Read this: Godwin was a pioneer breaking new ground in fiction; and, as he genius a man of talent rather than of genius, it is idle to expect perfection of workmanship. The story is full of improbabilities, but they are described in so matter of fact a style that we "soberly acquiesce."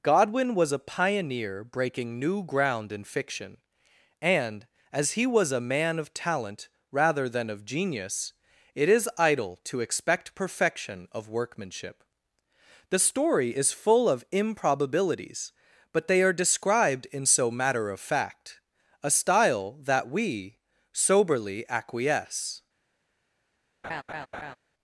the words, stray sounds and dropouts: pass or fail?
fail